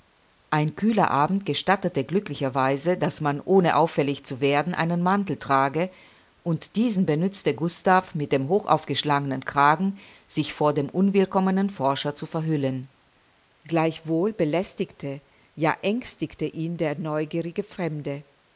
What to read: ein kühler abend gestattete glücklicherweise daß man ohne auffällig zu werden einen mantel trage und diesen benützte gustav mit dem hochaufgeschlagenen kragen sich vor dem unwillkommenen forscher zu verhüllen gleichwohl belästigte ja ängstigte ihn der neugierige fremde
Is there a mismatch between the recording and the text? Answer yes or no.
no